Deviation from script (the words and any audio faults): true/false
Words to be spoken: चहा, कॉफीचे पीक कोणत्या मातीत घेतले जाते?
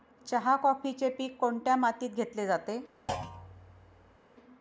true